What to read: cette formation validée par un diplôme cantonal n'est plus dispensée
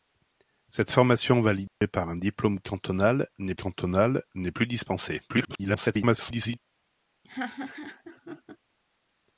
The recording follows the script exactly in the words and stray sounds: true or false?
false